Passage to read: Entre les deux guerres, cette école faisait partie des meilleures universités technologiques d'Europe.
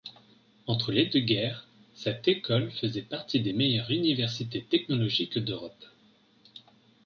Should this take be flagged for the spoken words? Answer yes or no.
no